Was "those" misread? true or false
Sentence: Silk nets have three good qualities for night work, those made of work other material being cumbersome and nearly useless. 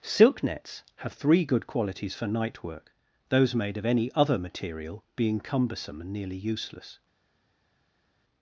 false